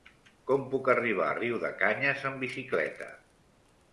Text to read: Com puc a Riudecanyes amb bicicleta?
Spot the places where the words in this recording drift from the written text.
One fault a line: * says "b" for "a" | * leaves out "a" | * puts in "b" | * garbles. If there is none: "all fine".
* puts in "arribar"